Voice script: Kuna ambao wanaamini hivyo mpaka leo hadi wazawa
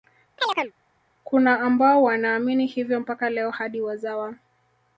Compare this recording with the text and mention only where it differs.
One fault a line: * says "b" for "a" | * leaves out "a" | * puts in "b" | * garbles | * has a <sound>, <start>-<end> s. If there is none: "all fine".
* has a chirp, 0.4-0.7 s